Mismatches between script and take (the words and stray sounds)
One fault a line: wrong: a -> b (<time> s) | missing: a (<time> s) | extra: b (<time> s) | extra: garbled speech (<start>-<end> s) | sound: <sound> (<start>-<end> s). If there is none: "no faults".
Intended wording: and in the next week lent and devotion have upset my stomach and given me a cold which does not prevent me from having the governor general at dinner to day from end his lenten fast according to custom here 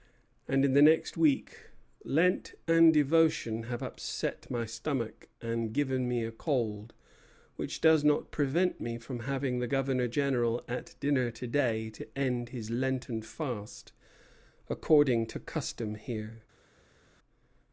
wrong: from -> to (11.9 s)